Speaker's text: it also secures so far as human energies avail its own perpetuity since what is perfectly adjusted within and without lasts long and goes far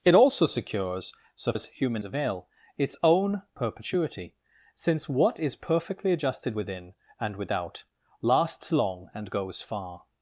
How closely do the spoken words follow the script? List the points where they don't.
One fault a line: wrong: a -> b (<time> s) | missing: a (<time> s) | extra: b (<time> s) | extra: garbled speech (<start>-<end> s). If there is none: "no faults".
missing: far (1.5 s)
missing: energies (2.0 s)